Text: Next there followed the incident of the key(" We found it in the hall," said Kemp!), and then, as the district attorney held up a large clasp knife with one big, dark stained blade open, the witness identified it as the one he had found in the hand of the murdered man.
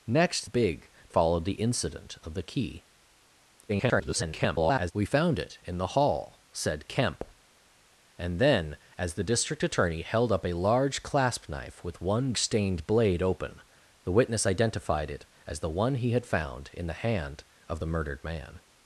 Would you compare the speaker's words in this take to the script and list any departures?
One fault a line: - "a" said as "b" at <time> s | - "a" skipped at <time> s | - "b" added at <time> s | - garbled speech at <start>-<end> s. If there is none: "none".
- "there" said as "big" at 0.4 s
- garbled speech at 3.7-4.9 s
- "big dark" skipped at 12.3 s